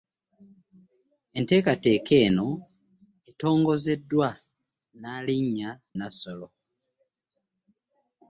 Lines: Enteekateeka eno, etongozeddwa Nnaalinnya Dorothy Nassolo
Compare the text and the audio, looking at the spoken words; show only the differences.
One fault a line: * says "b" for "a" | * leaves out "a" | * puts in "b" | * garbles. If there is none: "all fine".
* leaves out "Dorothy"